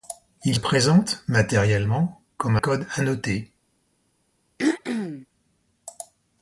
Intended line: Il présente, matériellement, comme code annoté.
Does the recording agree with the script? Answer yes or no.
yes